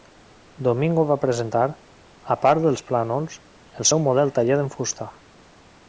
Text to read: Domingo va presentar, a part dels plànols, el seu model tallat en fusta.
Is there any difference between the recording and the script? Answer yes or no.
no